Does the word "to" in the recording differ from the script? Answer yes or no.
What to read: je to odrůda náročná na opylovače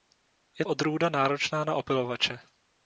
yes